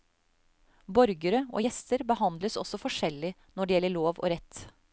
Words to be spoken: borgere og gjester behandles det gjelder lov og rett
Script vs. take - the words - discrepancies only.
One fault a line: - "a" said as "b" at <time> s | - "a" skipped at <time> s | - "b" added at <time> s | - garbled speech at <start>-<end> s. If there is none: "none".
- "også forskjellig når" added at 2.6 s